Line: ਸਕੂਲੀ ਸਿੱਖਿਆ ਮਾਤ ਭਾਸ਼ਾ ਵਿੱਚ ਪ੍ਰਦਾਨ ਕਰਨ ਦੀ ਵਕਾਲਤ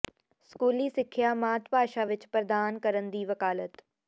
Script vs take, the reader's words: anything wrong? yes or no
no